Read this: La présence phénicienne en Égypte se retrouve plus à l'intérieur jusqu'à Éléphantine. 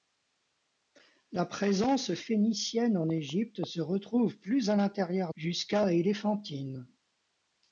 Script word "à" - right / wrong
right